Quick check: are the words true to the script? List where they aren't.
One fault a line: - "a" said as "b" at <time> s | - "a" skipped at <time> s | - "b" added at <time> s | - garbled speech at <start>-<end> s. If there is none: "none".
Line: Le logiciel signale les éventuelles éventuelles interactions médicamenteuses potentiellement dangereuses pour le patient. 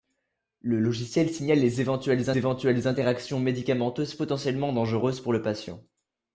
none